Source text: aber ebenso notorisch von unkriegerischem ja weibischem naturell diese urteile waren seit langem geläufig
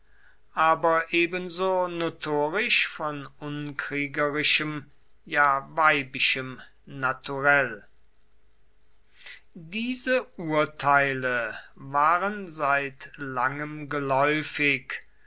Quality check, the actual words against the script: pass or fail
pass